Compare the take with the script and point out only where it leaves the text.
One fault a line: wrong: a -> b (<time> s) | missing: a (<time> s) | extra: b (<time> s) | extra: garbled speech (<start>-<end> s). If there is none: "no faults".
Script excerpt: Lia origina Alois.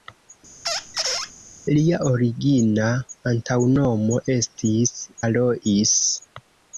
extra: antaŭnomo estis (3.3 s)